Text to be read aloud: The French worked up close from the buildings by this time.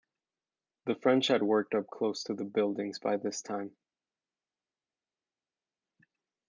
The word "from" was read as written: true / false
false